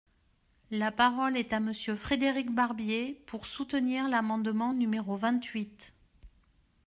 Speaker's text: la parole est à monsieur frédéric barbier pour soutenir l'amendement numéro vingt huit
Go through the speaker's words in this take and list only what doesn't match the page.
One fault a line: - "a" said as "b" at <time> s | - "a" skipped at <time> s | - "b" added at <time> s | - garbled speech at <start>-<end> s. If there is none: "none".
none